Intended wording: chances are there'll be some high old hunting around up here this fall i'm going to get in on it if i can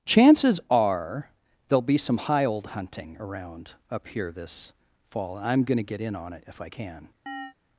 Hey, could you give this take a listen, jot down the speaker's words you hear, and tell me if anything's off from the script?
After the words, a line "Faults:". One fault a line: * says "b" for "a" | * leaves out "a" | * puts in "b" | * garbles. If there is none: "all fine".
chances are there'll be some high old hunting around up here this fall i'm going to get in on it if i can
Faults:
all fine